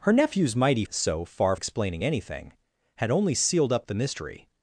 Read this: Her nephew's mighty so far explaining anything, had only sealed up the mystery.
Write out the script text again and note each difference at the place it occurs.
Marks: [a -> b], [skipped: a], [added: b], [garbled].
Her nephew's mighty so far explaining anything, had only sealed up the mystery.